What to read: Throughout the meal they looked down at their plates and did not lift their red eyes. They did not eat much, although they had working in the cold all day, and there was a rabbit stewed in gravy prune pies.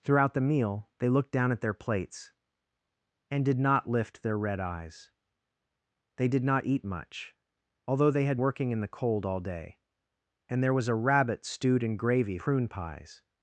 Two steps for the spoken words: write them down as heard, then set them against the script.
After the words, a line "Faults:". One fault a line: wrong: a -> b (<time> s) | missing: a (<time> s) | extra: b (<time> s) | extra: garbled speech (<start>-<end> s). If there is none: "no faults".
Throughout the meal they looked down at their plates and did not lift their red eyes. They did not eat much, although they had working in the cold all day, and there was a rabbit stewed in gravy prune pies.
Faults:
no faults